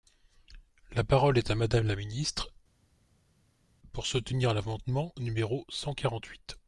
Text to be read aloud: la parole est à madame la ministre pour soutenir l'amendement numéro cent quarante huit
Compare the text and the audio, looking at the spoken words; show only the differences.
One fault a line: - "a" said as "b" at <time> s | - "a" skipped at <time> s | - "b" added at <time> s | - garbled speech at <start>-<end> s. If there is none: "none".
none